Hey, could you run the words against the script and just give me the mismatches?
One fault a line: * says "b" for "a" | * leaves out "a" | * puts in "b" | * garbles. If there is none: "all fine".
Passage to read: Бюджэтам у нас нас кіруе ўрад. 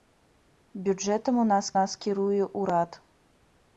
all fine